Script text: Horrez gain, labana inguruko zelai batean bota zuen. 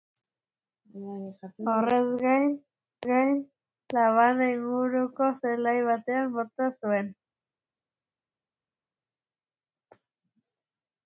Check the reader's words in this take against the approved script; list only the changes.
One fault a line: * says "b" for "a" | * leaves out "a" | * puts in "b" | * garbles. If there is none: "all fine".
* puts in "gain"